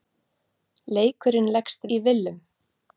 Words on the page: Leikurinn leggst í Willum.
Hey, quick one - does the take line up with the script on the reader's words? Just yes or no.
yes